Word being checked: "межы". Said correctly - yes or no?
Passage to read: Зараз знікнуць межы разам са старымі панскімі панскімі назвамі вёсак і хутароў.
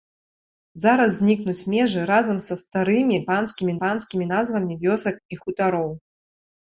yes